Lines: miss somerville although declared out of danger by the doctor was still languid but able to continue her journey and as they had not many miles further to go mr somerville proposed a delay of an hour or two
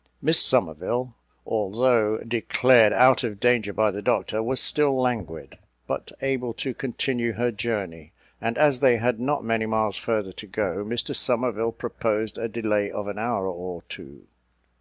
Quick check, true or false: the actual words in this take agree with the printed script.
true